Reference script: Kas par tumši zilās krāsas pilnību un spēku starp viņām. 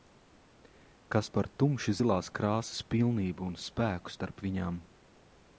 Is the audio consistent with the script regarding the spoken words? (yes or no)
yes